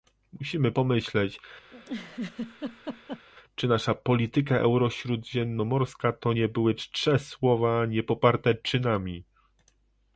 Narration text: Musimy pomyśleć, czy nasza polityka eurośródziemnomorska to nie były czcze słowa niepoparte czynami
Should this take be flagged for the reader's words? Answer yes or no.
no